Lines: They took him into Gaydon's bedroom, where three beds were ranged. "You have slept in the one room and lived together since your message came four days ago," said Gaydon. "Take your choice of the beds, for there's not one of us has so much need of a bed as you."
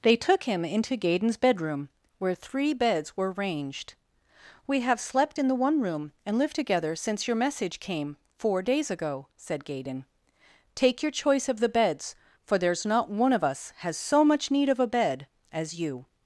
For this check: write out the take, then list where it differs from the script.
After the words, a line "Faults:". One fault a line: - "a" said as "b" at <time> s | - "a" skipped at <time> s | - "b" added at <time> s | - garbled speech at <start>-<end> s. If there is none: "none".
They took him into Gaydon's bedroom, where three beds were ranged. "We have slept in the one room and lived together since your message came four days ago," said Gaydon. "Take your choice of the beds, for there's not one of us has so much need of a bed as you."
Faults:
- "You" said as "We" at 4.7 s